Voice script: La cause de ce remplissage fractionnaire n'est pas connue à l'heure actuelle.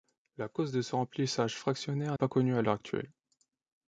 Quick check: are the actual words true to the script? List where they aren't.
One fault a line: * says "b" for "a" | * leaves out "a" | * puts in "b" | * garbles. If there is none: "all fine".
* leaves out "n'est"